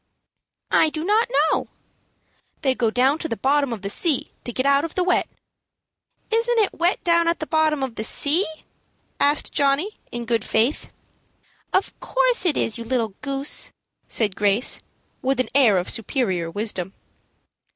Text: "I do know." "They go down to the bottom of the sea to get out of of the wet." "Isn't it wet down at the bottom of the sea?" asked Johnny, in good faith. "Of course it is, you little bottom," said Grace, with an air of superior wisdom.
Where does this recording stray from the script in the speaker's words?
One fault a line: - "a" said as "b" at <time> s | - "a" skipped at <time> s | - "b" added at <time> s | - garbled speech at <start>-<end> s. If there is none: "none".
- "not" added at 1.0 s
- "of" skipped at 5.0 s
- "bottom" said as "goose" at 13.2 s